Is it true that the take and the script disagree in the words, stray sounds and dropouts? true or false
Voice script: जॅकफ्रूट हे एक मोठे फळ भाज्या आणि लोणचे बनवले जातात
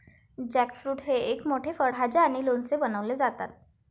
false